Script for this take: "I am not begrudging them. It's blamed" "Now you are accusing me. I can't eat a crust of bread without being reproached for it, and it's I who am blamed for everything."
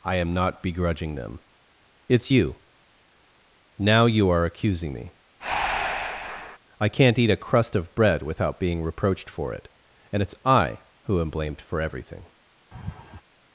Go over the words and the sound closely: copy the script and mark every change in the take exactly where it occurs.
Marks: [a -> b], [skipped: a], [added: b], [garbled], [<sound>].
"I am not begrudging them. It's [blamed" -> you] "Now you are accusing me. [breath] I can't eat a crust of bread without being reproached for it, and it's I who am blamed for everything." [laugh]